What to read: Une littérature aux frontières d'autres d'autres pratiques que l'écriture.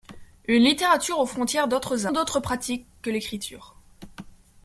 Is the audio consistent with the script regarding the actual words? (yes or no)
yes